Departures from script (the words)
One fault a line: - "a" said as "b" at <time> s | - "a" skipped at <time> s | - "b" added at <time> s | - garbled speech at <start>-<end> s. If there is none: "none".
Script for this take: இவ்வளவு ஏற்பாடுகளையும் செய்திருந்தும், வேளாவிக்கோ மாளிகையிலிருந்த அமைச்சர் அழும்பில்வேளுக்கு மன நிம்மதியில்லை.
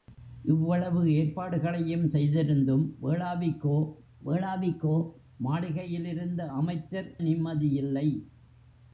- "வேளாவிக்கோ" added at 4.2 s
- "அழும்பில்வேளுக்கு மன" skipped at 7.1 s